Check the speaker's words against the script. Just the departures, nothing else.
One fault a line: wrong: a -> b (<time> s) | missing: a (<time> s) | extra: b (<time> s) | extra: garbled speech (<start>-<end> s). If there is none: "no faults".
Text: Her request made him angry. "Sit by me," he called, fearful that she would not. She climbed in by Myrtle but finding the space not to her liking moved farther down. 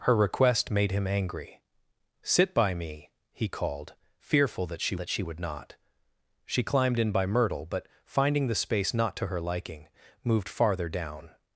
extra: that she (5.0 s)